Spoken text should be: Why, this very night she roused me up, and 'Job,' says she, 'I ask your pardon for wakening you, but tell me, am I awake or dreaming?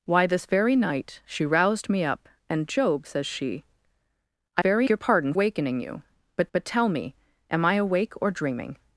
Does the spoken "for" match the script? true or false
false